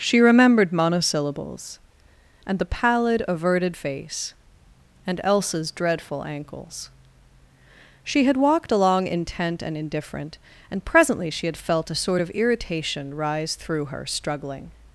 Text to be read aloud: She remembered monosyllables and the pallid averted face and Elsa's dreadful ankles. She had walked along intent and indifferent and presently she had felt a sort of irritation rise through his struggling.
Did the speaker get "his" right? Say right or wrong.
wrong